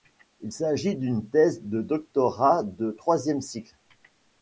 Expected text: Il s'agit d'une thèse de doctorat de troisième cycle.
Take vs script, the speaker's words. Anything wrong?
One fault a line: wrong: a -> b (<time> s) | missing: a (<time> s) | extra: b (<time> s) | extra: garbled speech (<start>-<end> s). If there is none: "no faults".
no faults